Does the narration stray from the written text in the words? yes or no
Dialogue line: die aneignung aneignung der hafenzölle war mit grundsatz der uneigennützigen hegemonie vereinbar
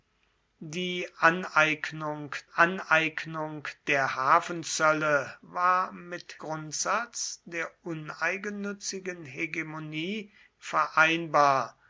no